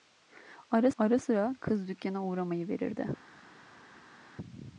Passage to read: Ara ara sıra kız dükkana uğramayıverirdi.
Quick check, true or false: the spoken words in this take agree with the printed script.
true